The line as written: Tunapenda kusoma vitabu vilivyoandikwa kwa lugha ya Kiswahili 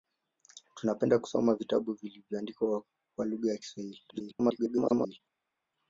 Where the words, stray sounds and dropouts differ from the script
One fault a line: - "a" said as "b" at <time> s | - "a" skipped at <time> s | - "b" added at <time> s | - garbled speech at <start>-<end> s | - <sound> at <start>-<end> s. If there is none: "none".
- garbled speech at 4.1-5.2 s